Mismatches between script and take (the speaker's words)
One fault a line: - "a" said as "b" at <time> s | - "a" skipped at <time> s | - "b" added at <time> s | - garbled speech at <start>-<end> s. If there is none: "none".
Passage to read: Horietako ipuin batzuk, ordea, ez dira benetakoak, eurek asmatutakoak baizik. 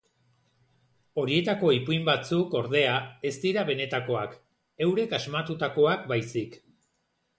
none